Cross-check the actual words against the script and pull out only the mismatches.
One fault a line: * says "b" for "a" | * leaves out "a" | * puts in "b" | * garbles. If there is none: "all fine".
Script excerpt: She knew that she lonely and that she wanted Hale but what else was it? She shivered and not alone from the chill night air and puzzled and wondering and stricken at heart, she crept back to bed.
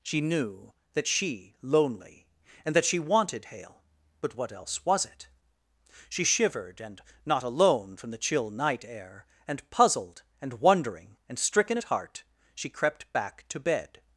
all fine